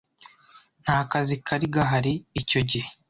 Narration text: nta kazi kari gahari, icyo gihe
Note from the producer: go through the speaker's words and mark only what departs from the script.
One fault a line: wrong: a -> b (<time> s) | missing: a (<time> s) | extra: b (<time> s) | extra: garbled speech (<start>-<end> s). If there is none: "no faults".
no faults